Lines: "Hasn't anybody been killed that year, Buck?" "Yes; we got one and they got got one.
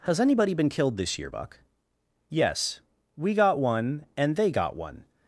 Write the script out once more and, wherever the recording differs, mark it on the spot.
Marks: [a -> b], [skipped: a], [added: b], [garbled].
["Hasn't -> Has] anybody been killed [that -> this] year, Buck?" "Yes; we got one and they got [skipped: got] one.